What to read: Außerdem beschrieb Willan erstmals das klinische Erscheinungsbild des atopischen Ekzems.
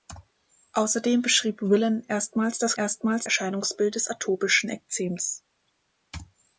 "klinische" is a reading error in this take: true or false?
true